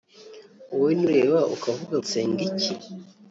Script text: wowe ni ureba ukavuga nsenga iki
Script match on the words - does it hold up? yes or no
yes